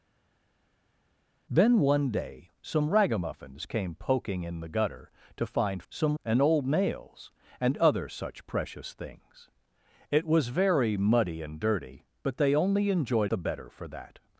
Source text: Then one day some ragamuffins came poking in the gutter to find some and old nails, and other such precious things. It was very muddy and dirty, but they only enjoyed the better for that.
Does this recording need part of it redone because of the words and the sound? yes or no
no